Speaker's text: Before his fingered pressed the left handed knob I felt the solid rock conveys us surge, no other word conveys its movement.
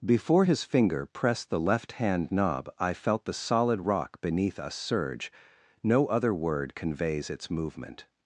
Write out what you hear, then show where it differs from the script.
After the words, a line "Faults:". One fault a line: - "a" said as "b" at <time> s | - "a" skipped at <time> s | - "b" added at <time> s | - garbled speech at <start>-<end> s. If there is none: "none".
Before his finger pressed the left hand knob I felt the solid rock beneath us surge, no other word conveys its movement.
Faults:
- "fingered" said as "finger" at 0.6 s
- "handed" said as "hand" at 1.9 s
- "conveys" said as "beneath" at 4.2 s